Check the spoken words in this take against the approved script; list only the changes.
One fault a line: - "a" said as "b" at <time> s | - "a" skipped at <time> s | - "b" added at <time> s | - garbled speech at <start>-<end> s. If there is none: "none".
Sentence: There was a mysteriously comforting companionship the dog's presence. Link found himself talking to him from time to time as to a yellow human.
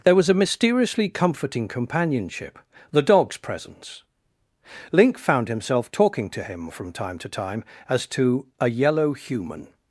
none